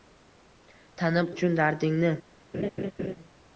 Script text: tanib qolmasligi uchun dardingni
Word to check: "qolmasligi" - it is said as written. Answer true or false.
false